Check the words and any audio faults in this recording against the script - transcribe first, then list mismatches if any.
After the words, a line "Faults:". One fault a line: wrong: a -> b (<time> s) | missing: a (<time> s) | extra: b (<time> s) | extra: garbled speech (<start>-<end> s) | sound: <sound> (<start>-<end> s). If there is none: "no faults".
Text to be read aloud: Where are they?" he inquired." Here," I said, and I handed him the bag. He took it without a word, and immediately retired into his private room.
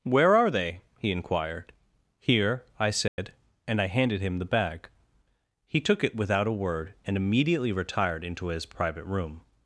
Where are they?" he inquired." Here," I said, and I handed him the bag. He took it without a word, and immediately retired into his private room.
Faults:
sound: dropout (3.1-3.2 s)